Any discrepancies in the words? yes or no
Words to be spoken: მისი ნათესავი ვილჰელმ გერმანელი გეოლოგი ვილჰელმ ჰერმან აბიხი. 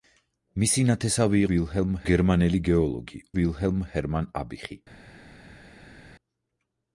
no